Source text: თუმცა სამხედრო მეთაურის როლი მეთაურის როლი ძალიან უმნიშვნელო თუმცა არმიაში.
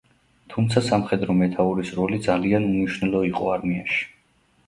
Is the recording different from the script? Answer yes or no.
yes